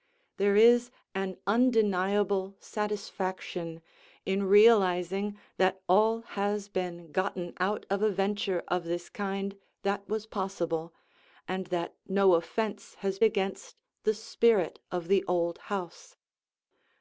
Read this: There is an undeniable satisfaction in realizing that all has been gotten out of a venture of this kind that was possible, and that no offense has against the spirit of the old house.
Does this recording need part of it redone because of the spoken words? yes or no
no